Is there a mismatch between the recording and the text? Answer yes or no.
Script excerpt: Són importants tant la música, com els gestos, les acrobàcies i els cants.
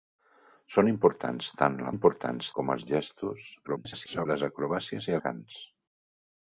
yes